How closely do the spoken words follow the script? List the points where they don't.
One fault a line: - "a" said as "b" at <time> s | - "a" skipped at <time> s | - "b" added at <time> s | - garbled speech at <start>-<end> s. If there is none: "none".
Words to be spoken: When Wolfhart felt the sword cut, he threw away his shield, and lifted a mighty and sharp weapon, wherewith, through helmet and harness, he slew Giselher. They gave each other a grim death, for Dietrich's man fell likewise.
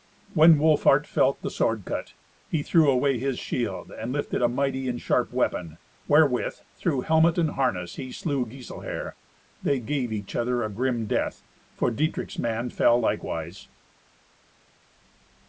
none